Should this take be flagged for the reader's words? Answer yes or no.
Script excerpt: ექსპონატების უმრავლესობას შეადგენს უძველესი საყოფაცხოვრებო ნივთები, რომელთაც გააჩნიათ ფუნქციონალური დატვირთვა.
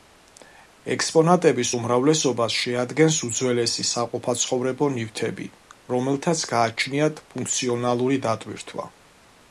no